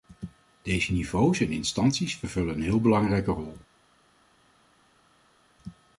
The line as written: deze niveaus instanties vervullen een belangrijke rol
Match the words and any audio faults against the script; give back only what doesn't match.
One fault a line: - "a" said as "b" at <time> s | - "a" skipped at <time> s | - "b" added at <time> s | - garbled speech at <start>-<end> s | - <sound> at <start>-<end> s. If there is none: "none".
- "en" added at 1.4 s
- "heel" added at 2.6 s